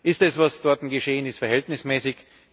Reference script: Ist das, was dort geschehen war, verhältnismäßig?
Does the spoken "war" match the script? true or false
false